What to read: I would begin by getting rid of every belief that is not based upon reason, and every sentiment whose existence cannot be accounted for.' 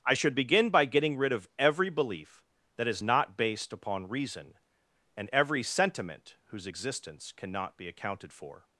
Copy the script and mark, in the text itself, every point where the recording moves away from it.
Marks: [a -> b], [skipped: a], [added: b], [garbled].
I [would -> should] begin by getting rid of every belief that is not based upon reason, and every sentiment whose existence cannot be accounted for.'